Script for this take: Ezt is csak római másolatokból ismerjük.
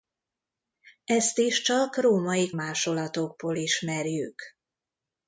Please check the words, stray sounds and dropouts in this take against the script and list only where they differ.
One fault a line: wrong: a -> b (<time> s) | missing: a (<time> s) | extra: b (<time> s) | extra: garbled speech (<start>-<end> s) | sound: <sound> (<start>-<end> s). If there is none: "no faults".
no faults